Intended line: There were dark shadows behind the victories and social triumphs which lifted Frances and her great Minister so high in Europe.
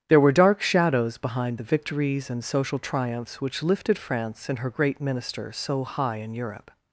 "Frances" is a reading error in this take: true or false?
true